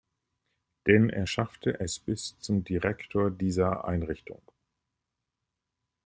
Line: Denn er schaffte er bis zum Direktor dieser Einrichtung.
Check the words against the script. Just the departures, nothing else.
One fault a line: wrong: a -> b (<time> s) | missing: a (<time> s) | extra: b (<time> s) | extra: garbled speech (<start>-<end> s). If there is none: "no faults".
wrong: er -> es (1.8 s)